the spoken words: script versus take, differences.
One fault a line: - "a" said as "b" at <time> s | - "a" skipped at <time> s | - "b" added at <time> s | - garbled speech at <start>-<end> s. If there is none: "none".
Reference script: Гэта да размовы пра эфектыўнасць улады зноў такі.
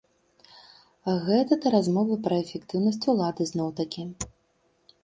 none